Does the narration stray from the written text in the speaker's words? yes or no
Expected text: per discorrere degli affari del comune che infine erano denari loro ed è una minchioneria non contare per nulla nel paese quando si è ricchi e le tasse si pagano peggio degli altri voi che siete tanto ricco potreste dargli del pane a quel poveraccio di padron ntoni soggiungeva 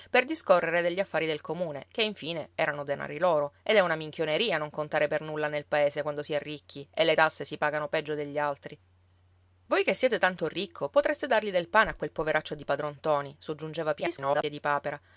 yes